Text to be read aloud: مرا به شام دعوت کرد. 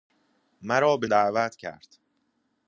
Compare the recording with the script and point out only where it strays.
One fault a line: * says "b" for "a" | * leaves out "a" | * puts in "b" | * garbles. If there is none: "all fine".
* leaves out "شام"